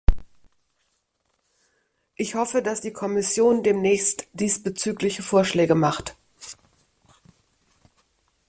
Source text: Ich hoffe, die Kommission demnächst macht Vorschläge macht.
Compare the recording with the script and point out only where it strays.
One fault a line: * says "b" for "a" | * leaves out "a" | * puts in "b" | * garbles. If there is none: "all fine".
* puts in "dass"
* says "diesbezügliche" for "macht"